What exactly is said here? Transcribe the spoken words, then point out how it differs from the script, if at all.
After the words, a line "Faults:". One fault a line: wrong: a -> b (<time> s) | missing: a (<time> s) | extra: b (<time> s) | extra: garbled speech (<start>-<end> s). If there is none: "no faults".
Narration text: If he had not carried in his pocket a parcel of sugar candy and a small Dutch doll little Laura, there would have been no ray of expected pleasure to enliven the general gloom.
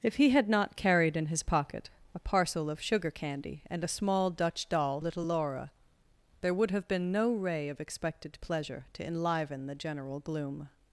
If he had not carried in his pocket a parcel of sugar candy and a small Dutch doll little Laura, there would have been no ray of expected pleasure to enliven the general gloom.
Faults:
no faults